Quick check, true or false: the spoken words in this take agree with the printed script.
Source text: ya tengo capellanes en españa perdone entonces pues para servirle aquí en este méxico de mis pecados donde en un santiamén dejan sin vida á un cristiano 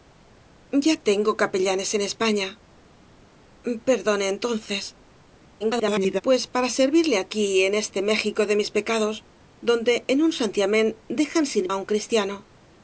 false